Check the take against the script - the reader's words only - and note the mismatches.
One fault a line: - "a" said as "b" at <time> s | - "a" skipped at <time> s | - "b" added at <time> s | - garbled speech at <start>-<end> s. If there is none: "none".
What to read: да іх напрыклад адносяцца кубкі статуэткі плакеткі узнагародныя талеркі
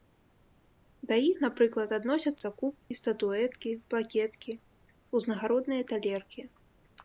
none